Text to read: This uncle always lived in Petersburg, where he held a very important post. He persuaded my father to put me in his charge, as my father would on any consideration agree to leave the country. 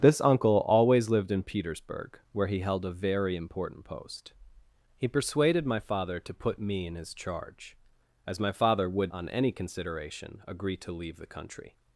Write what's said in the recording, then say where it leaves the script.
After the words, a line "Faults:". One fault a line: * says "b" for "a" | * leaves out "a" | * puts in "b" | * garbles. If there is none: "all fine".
This uncle always lived in Petersburg, where he held a very important post. He persuaded my father to put me in his charge, as my father would on any consideration agree to leave the country.
Faults:
all fine